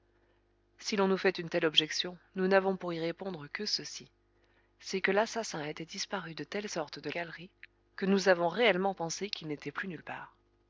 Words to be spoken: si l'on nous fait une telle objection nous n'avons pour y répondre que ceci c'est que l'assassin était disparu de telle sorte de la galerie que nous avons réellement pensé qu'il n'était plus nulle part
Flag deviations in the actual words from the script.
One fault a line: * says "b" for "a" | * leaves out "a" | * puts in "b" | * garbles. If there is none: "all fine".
* leaves out "la"